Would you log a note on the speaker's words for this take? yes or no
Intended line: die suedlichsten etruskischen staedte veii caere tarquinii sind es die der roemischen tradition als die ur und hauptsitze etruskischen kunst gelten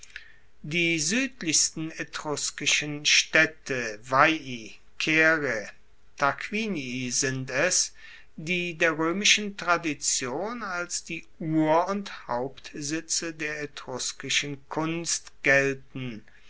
yes